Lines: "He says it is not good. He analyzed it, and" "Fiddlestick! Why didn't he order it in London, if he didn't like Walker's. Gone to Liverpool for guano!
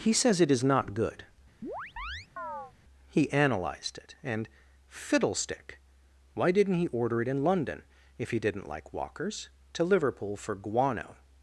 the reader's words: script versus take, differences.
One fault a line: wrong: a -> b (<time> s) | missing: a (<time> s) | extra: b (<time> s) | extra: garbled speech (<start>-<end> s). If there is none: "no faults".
missing: Gone (9.5 s)